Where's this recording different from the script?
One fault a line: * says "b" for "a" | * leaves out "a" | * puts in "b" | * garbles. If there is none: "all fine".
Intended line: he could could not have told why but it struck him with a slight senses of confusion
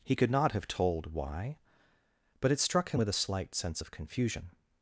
* leaves out "could"
* says "sense" for "senses"